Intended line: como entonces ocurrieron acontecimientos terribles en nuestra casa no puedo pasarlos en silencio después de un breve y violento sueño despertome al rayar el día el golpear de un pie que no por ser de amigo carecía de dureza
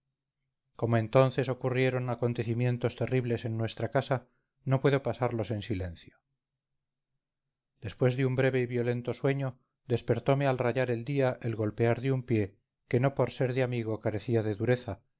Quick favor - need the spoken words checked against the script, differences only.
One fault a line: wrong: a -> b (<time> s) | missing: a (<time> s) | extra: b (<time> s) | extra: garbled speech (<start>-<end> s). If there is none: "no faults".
no faults